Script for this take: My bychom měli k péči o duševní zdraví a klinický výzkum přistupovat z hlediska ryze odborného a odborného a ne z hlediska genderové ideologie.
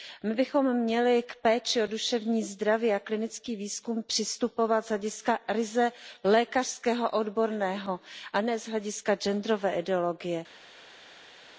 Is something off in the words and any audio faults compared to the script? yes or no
yes